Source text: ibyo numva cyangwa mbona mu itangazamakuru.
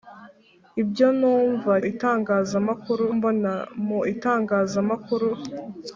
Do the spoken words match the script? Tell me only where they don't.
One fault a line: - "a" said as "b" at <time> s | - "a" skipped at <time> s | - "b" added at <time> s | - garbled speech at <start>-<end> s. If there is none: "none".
- "cyangwa" said as "itangazamakuru" at 1.9 s